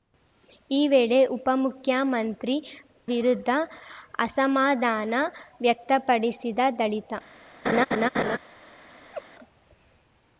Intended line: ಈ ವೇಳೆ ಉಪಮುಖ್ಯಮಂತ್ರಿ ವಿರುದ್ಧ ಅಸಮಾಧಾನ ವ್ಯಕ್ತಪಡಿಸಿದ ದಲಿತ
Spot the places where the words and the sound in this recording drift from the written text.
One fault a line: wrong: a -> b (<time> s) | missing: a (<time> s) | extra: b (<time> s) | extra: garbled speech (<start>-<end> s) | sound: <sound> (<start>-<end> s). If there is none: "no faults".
sound: laugh (7.6-8.4 s)
sound: laugh (9.1-9.3 s)